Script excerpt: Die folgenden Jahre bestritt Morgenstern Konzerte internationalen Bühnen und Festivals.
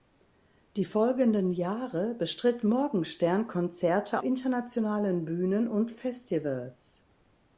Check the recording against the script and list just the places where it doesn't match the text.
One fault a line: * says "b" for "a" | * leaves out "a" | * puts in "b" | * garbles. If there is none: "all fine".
all fine